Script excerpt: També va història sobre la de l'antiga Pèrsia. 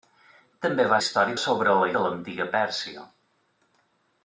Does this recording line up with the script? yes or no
yes